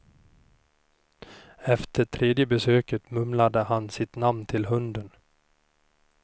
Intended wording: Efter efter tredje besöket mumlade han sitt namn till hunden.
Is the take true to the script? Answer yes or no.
no